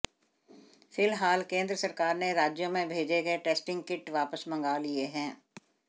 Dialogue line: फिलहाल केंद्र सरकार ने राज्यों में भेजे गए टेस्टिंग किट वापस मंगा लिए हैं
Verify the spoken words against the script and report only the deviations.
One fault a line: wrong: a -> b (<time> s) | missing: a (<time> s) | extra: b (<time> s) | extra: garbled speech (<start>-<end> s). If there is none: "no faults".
no faults